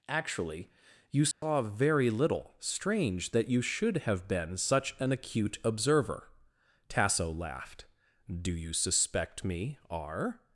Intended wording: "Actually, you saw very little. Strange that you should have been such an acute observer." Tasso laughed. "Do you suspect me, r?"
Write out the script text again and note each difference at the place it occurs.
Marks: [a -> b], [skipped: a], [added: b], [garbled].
"Actually, you saw very little. Strange that you should have been such an acute observer." Tasso laughed. "Do you suspect me, r?"